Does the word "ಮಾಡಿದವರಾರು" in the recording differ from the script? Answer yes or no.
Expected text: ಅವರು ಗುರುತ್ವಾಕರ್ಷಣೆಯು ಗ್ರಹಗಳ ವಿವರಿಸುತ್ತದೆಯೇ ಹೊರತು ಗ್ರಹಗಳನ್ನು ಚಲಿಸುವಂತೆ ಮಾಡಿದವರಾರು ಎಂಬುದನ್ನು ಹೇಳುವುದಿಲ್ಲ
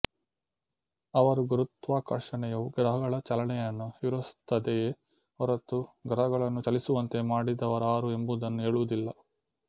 no